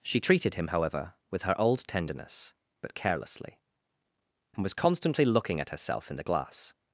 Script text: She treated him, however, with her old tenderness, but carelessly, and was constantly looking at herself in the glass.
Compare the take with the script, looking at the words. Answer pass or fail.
pass